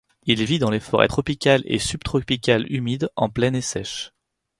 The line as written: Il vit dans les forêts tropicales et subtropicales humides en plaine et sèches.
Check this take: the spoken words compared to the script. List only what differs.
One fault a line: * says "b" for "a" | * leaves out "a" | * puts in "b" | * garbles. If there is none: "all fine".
all fine